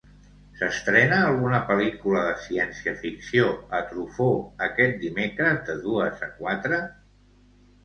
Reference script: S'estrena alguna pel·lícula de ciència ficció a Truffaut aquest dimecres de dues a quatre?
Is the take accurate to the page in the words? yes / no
yes